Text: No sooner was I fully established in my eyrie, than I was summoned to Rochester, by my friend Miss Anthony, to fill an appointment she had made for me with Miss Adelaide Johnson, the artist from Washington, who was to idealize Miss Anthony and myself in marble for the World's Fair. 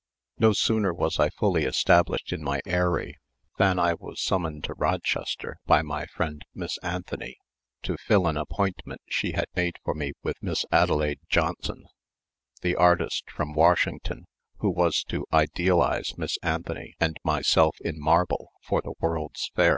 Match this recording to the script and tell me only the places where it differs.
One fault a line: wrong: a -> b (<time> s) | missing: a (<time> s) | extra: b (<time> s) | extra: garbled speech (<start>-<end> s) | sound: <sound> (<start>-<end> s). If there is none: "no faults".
no faults